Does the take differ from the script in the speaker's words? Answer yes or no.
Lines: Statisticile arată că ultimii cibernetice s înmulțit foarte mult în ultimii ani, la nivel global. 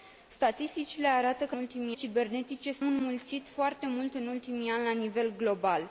no